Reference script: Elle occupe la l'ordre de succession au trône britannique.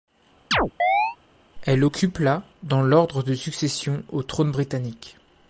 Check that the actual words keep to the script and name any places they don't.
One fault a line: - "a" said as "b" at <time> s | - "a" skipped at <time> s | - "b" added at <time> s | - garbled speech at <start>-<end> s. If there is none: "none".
- "dans" added at 2.6 s